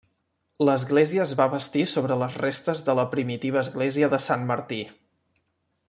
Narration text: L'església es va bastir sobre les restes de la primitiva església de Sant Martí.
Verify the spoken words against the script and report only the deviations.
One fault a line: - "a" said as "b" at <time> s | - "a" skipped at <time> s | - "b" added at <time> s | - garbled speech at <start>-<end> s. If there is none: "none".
none